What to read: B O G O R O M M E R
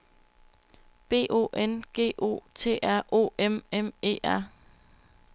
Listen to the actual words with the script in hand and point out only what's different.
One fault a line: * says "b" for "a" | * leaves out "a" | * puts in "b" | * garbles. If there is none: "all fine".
* puts in "N"
* puts in "T"